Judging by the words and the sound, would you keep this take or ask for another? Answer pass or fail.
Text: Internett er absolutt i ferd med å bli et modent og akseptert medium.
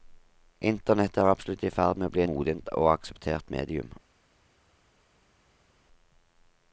fail